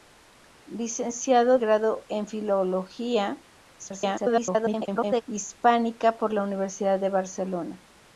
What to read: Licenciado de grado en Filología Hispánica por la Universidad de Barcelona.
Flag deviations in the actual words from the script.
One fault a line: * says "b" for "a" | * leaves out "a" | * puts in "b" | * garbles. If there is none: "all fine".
* leaves out "de"
* garbles